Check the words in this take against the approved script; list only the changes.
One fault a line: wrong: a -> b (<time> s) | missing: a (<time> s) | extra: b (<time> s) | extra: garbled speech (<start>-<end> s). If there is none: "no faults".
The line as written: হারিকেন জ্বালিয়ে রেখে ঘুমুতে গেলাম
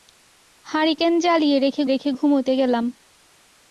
extra: রেখে (1.9 s)